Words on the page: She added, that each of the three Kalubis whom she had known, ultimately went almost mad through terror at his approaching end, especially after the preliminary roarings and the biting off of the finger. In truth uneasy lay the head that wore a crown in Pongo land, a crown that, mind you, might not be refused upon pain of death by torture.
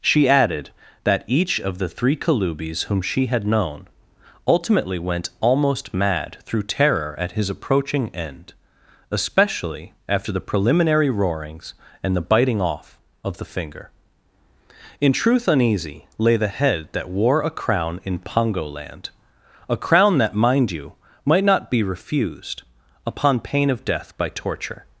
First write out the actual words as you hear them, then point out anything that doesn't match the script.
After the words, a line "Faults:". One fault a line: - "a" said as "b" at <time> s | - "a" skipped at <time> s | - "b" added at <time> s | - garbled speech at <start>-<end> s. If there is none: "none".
She added, that each of the three Kalubis whom she had known, ultimately went almost mad through terror at his approaching end, especially after the preliminary roarings and the biting off of the finger. In truth uneasy lay the head that wore a crown in Pongo land, a crown that, mind you, might not be refused upon pain of death by torture.
Faults:
none